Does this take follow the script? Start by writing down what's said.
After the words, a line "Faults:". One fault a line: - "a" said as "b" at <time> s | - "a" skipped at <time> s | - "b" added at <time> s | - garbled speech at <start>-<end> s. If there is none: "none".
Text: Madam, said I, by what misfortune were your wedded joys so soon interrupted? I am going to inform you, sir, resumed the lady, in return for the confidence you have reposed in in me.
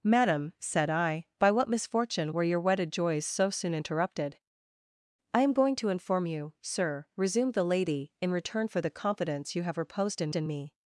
Madam, said I, by what misfortune were your wedded joys so soon interrupted? I am going to inform you, sir, resumed the lady, in return for the confidence you have reposed in in me.
Faults:
none